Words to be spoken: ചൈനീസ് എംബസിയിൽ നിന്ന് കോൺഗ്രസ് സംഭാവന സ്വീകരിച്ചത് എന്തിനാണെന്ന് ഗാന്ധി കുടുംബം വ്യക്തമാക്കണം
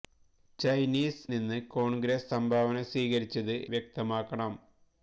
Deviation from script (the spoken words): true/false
true